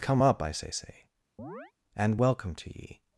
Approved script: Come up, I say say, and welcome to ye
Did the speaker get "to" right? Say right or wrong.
right